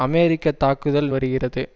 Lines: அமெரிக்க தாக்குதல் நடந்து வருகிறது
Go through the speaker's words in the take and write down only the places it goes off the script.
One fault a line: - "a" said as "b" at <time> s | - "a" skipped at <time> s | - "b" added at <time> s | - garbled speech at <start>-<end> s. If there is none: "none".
- "நடந்து" skipped at 1.1 s